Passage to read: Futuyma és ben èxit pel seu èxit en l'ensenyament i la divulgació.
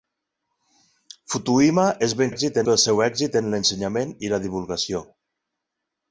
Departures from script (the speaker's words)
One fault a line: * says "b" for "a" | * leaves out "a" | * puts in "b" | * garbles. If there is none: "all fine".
all fine